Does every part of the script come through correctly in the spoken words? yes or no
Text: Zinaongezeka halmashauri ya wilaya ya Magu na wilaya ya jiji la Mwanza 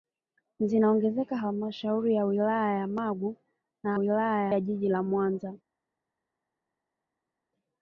yes